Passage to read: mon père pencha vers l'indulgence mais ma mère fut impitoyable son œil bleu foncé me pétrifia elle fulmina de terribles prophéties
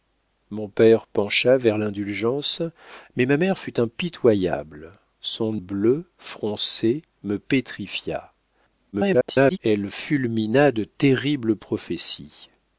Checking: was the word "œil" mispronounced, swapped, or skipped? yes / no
yes